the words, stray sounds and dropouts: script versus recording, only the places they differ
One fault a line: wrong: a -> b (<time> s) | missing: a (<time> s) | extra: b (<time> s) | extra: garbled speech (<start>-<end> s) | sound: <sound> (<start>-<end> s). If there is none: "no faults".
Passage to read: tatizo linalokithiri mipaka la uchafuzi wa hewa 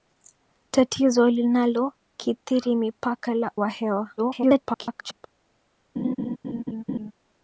missing: uchafuzi (3.5 s)
extra: garbled speech (4.2-5.3 s)
sound: laugh (6.0-7.1 s)